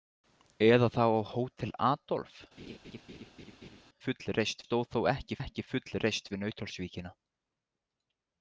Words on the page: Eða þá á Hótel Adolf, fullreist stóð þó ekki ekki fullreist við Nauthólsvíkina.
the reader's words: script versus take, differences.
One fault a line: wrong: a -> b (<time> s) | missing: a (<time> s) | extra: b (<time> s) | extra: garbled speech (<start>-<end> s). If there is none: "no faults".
no faults